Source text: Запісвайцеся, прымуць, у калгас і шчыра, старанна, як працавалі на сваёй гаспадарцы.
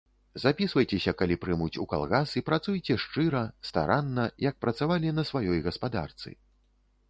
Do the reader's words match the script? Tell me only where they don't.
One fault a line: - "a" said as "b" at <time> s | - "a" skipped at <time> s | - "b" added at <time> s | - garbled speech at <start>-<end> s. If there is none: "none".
- "калі" added at 1.2 s
- "працуйце" added at 2.5 s